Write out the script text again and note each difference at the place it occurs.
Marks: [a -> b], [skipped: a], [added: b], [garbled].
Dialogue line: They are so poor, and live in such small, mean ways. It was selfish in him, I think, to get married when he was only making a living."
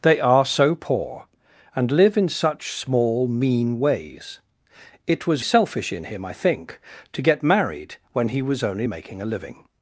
They are so poor, and live in such small, mean ways. It was selfish in him, I think, to get married when he was only making a living."